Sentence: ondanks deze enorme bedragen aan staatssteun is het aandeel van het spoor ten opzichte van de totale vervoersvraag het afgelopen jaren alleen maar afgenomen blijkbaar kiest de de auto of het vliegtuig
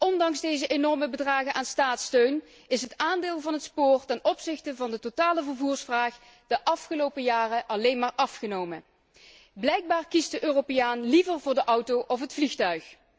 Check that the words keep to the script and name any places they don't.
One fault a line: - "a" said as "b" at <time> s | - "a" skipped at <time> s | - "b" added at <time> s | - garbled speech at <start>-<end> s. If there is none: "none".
- "het" said as "de" at 6.5 s
- "europeaan liever voor" added at 10.4 s